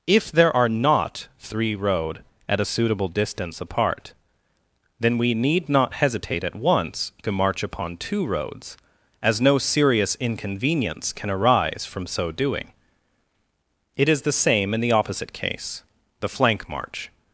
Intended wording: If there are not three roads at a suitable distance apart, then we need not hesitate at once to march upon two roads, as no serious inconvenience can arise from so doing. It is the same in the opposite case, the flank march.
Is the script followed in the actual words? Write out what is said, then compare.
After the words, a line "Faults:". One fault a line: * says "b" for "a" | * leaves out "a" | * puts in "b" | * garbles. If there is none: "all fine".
If there are not three road at a suitable distance apart, then we need not hesitate at once to march upon two roads, as no serious inconvenience can arise from so doing. It is the same in the opposite case, the flank march.
Faults:
* says "road" for "roads"